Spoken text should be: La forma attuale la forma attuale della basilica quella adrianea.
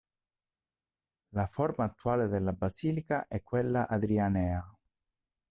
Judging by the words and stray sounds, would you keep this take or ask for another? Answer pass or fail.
fail